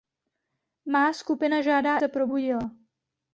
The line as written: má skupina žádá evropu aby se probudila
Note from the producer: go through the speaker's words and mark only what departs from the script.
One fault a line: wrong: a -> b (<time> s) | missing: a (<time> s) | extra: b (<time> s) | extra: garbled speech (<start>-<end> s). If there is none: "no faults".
missing: evropu aby (2.0 s)